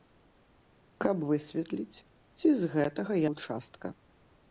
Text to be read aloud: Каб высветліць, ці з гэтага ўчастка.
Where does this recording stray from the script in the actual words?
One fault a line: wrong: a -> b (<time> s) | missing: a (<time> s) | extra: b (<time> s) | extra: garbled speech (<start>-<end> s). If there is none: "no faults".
no faults